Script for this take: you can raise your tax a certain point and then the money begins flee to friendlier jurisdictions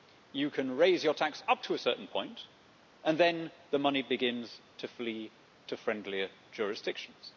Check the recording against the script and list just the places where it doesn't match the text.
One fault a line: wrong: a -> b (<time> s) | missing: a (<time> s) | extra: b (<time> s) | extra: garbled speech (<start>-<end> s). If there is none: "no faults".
extra: up to (1.5 s)
extra: to (4.8 s)